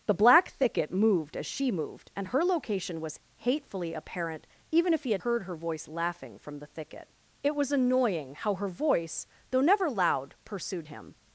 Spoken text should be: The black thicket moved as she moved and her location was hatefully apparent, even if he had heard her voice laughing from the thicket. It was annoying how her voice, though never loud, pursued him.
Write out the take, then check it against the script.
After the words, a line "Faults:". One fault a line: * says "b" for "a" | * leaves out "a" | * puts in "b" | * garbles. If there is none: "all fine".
The black thicket moved as she moved and her location was hatefully apparent, even if he had heard her voice laughing from the thicket. It was annoying how her voice, though never loud, pursued him.
Faults:
all fine